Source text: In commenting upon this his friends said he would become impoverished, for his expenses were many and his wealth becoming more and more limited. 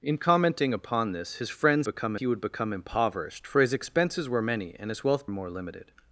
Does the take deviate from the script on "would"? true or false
false